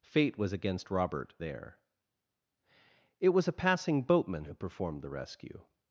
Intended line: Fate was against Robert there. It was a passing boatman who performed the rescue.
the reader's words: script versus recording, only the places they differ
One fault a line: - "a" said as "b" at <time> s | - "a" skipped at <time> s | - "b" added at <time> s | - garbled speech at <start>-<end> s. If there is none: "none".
none